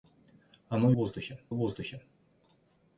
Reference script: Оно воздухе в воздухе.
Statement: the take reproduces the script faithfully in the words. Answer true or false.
true